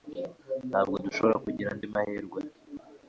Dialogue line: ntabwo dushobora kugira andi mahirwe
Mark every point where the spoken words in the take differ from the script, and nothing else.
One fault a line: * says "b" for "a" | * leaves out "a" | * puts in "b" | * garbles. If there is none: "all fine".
all fine